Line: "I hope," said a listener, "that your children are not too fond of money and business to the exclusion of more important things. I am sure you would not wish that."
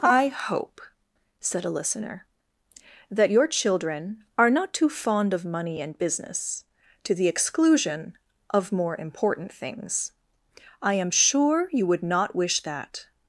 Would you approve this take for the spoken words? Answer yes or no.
yes